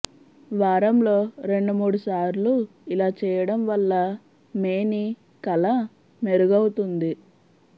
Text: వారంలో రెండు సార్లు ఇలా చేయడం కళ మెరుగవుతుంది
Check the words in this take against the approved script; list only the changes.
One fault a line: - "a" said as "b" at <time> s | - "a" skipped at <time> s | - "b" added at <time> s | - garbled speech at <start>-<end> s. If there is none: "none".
- "మూడు" added at 1.7 s
- "వల్ల మేని" added at 3.7 s